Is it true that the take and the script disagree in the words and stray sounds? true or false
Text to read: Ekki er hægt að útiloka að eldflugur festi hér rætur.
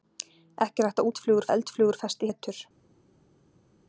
true